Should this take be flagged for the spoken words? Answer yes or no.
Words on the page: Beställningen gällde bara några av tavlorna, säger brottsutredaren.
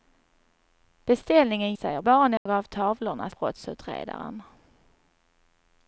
yes